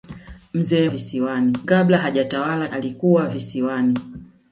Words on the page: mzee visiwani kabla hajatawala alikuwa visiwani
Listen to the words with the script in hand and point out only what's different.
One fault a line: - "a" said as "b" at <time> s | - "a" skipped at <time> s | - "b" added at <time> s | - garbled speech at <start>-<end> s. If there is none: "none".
none